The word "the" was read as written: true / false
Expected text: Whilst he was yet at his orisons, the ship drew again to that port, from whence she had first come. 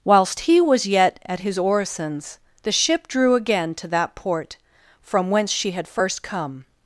true